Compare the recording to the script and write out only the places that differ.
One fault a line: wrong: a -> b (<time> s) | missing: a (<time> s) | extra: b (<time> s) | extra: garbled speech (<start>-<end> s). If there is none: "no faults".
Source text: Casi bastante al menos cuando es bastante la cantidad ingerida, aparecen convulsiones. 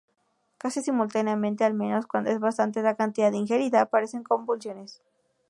wrong: bastante -> simultáneamente (0.8 s)